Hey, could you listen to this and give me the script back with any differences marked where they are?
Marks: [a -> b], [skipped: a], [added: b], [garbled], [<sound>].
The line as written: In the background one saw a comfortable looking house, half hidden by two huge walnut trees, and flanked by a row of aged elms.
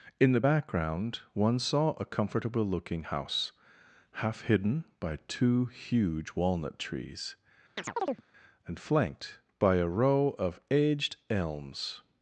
In the background one saw a comfortable looking house, half hidden by two huge walnut trees, [chirp] and flanked by a row of aged elms.